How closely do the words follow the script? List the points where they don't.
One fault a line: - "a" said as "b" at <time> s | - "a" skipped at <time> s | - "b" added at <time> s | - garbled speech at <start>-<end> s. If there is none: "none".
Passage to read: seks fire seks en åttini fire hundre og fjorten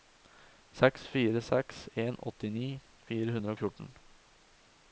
none